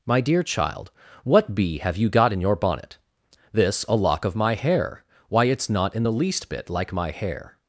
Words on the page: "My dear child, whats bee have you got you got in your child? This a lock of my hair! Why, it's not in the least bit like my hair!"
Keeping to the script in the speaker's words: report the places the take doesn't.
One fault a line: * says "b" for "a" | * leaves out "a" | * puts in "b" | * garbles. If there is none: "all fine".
* says "what" for "whats"
* leaves out "you got"
* says "bonnet" for "child"